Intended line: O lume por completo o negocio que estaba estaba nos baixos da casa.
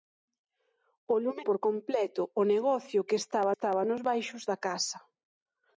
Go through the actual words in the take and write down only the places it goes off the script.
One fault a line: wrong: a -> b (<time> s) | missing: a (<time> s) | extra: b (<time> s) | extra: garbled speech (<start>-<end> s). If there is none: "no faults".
no faults